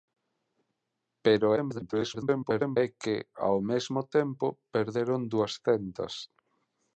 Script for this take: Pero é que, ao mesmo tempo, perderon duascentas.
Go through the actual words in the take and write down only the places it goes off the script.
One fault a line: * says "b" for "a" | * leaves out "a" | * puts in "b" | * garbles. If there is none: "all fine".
* garbles